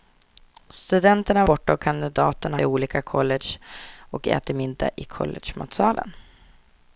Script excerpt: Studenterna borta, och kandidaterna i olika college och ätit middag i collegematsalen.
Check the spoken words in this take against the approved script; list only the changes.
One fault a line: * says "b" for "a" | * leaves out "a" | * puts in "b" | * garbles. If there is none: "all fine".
all fine